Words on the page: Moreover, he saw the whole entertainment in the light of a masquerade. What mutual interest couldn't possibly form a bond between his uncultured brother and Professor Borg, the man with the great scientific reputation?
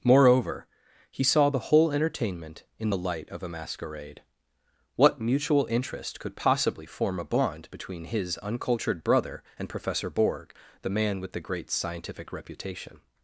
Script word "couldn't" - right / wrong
wrong